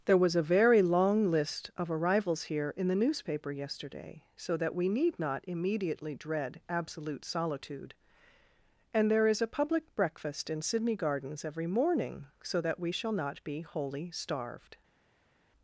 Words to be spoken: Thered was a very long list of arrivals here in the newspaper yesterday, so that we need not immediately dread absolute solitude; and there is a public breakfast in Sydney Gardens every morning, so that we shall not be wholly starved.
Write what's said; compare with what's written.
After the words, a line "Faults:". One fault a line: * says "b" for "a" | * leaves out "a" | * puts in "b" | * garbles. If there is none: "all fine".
There was a very long list of arrivals here in the newspaper yesterday, so that we need not immediately dread absolute solitude; and there is a public breakfast in Sydney Gardens every morning, so that we shall not be wholly starved.
Faults:
* says "There" for "Thered"